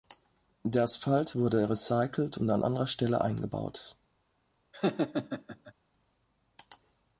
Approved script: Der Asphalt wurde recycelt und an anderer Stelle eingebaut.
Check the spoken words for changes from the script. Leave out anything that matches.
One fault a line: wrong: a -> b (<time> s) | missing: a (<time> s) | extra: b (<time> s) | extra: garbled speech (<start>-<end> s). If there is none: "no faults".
no faults